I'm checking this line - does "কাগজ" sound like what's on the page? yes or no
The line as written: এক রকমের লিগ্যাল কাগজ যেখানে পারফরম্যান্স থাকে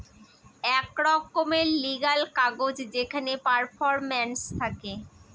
yes